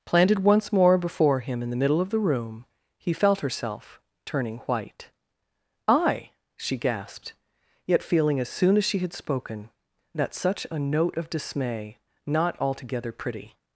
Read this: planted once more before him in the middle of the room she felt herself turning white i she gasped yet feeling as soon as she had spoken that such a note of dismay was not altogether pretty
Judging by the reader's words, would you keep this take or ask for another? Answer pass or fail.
fail